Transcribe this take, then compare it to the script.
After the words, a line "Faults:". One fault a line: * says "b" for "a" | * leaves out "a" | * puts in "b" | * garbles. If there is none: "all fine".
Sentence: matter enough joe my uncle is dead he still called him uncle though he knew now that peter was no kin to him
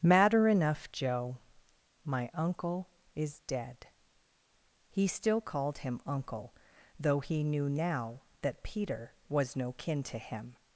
matter enough joe my uncle is dead he still called him uncle though he knew now that peter was no kin to him
Faults:
all fine